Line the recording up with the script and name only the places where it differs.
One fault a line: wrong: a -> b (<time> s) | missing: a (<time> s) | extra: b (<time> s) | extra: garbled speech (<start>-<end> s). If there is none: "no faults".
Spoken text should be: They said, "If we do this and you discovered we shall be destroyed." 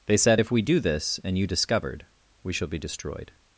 no faults